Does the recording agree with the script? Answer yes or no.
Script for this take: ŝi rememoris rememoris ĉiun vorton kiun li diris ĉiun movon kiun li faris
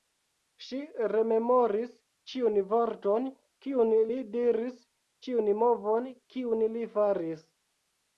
no